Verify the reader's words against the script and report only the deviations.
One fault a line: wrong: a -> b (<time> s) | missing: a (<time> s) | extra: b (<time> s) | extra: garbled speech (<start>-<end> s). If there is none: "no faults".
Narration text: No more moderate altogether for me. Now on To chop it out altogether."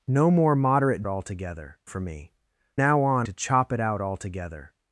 no faults